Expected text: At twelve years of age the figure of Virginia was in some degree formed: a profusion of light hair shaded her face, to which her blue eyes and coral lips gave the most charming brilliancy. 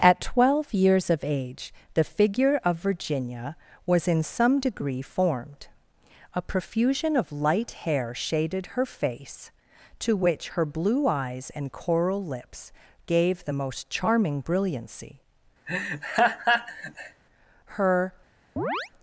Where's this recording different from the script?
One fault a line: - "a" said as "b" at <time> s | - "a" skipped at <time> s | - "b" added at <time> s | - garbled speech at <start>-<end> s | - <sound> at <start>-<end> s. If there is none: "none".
- laugh at 15.7-17.2 s
- "Her" added at 17.7 s
- chirp at 18.6-18.9 s